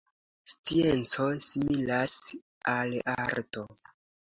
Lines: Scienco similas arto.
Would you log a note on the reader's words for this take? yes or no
yes